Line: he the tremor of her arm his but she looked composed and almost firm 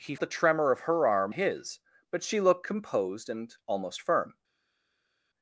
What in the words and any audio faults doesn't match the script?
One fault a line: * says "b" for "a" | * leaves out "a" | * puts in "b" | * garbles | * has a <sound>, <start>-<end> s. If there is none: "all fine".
all fine